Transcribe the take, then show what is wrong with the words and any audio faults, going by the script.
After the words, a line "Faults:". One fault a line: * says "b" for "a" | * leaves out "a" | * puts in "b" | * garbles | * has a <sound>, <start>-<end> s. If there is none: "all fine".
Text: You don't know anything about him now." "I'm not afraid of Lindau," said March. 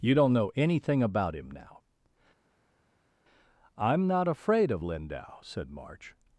You don't know anything about him now." "I'm not afraid of Lindau," said March.
Faults:
all fine